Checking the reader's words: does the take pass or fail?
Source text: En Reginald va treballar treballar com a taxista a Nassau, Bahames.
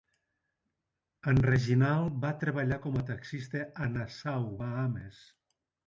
fail